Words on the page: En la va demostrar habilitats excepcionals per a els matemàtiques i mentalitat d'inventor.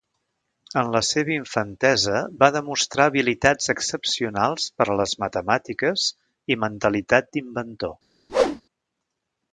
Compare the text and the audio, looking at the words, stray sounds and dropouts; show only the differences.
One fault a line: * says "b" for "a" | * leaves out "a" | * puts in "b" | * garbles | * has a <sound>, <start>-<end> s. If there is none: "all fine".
* puts in "seva infantesa"
* says "les" for "els"
* has a whoosh, 8.3-8.6 s